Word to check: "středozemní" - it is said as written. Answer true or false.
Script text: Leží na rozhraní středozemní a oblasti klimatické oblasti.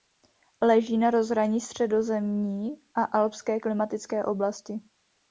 true